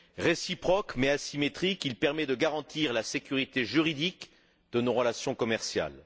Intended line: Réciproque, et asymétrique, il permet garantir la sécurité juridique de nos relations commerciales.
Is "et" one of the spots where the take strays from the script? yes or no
yes